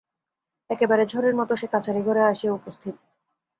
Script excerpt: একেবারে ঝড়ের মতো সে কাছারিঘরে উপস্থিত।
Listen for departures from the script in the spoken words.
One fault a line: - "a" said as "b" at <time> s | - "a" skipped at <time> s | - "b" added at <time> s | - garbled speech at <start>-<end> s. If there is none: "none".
- "আসিয়া" added at 2.2 s